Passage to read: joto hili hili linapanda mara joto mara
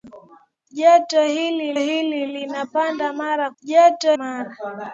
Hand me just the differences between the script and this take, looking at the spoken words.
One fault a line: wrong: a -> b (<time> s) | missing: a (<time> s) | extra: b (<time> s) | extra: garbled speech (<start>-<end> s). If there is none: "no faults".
no faults